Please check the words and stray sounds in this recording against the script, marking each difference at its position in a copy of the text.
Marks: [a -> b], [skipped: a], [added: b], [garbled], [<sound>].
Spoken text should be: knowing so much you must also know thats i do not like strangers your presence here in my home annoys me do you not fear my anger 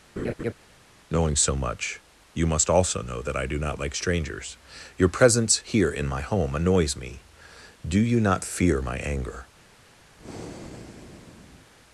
[laugh] knowing so much you must also know [thats -> that] i do not like strangers your presence here in my home annoys me do you not fear my anger [breath]